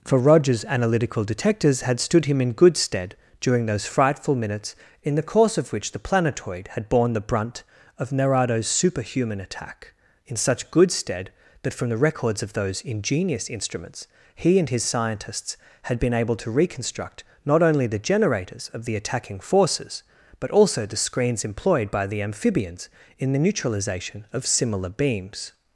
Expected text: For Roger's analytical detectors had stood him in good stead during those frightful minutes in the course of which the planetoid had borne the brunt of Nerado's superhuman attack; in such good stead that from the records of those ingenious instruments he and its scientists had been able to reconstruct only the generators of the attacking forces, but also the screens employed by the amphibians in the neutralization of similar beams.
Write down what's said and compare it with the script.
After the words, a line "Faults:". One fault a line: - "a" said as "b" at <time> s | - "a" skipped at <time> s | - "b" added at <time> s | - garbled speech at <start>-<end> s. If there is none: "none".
For Roger's analytical detectors had stood him in good stead during those frightful minutes in the course of which the planetoid had borne the brunt of Nerado's superhuman attack; in such good stead that from the records of those ingenious instruments he and his scientists had been able to reconstruct not only the generators of the attacking forces, but also the screens employed by the amphibians in the neutralization of similar beams.
Faults:
- "its" said as "his" at 14.7 s
- "not" added at 17.4 s